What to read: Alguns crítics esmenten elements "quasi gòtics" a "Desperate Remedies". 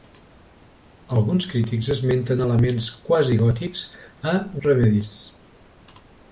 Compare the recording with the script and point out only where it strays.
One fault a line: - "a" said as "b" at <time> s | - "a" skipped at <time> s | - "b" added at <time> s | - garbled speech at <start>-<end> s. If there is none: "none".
- "Desperate" skipped at 4.3 s